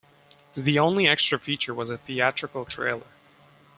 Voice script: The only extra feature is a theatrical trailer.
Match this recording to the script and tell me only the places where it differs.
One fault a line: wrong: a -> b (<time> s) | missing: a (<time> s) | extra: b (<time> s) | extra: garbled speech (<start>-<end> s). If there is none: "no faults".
wrong: is -> was (1.8 s)